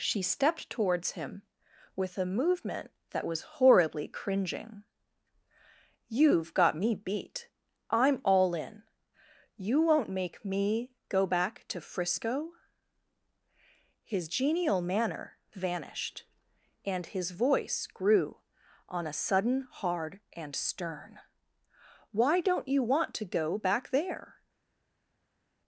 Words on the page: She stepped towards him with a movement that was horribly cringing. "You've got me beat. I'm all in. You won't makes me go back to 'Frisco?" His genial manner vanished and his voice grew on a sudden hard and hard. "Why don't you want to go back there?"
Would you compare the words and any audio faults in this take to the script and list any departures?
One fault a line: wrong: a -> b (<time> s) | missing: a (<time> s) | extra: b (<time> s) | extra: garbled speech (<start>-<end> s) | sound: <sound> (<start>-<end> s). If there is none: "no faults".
wrong: makes -> make (10.1 s)
wrong: hard -> stern (20.5 s)